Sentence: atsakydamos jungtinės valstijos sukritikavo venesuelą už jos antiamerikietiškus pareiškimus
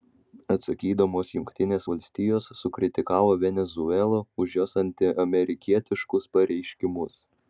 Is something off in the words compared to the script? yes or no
no